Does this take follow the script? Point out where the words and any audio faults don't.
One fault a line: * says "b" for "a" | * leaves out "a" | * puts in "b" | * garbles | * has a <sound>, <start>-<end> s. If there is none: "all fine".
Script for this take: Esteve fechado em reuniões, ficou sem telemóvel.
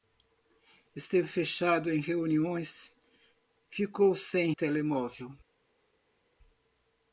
all fine